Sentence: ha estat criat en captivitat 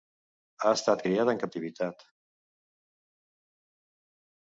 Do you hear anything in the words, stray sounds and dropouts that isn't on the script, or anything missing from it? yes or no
no